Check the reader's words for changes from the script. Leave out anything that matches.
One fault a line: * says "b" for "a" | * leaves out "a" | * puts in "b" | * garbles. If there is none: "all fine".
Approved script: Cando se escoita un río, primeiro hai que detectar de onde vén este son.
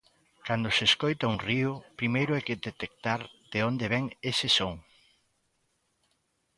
* says "ese" for "este"